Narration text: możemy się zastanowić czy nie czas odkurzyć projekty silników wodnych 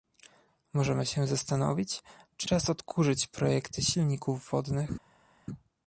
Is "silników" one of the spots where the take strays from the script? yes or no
no